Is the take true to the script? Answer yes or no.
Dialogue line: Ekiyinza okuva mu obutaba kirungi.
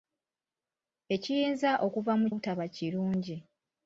yes